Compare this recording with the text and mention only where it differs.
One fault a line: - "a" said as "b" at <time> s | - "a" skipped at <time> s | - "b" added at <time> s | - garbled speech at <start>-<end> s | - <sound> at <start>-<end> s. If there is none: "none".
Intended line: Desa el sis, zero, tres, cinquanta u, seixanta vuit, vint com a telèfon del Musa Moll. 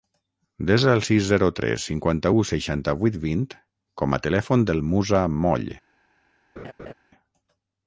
- laugh at 6.6-6.9 s